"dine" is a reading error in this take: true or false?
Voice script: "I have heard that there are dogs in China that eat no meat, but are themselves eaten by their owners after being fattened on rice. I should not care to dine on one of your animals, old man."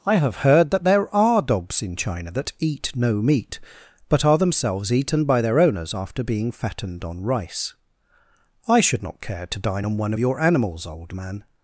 false